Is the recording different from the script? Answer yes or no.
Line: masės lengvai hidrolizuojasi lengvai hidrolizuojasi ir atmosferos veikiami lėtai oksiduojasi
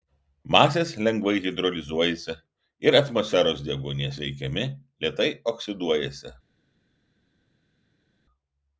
yes